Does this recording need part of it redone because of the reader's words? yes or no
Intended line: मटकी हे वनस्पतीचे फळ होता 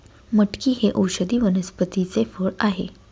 yes